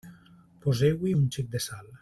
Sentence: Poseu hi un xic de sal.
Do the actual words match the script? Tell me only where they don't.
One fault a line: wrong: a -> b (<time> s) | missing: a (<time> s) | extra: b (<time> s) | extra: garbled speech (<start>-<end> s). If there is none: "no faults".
no faults